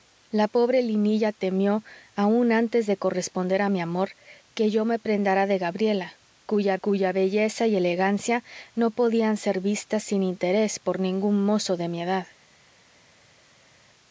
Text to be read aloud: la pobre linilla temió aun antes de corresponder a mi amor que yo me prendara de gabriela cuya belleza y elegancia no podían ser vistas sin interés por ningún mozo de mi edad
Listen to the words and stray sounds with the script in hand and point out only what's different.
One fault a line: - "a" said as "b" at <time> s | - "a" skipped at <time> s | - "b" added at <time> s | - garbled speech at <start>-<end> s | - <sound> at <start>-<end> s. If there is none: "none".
- "cuya" added at 6.8 s